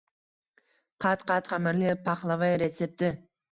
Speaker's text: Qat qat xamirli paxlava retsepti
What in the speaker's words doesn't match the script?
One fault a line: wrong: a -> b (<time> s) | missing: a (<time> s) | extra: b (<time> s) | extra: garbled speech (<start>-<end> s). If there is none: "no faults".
no faults